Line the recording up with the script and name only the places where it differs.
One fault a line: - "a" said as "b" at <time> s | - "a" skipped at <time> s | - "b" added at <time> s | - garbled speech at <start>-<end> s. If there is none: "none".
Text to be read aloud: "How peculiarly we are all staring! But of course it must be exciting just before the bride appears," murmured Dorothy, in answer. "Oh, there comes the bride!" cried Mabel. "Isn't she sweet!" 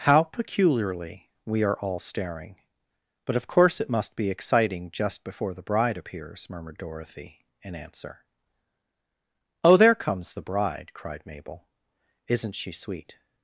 none